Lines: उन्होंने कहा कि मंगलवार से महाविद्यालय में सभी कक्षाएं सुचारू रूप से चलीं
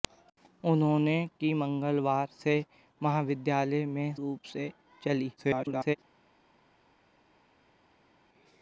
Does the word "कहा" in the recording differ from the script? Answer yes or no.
yes